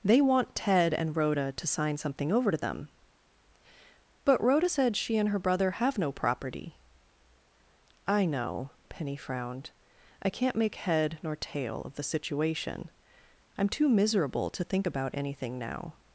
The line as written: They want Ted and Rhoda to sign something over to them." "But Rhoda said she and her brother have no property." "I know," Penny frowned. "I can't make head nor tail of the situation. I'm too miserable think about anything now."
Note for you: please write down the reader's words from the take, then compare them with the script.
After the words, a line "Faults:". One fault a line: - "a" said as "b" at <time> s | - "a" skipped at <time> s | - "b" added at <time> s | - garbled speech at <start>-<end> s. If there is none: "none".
They want Ted and Rhoda to sign something over to them." "But Rhoda said she and her brother have no property." "I know," Penny frowned. "I can't make head nor tail of the situation. I'm too miserable to think about anything now."
Faults:
- "to" added at 14.5 s